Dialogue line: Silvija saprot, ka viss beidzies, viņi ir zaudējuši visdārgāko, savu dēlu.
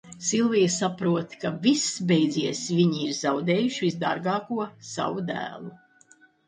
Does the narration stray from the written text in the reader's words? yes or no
no